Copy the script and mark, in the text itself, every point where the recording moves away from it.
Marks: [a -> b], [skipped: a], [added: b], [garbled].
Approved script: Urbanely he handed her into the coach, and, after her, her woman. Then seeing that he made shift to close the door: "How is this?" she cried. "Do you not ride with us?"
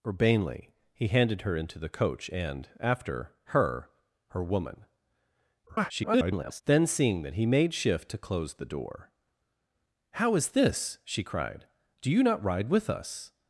Urbanely he handed her into the coach, and, after her, her woman. [garbled] Then seeing that he made shift to close the door: "How is this?" she cried. "Do you not ride with us?"